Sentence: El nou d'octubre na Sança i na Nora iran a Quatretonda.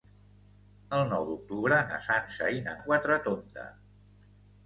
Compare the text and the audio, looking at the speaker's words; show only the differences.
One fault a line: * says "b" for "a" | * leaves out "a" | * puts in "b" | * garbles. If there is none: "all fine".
* leaves out "Nora iran"